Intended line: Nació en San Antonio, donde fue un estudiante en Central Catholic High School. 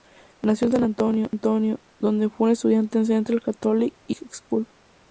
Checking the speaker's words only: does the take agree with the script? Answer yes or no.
yes